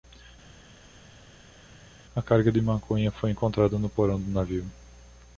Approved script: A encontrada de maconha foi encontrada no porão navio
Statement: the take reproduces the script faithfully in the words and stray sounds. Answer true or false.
false